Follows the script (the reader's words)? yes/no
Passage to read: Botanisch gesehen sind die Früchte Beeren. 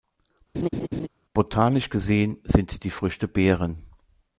yes